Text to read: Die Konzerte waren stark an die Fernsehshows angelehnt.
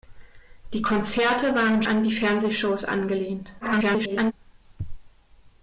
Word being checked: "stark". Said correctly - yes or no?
no